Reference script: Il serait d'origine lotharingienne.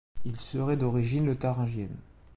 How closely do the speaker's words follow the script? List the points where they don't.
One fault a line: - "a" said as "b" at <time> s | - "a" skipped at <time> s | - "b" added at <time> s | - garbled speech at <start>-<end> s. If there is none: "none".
none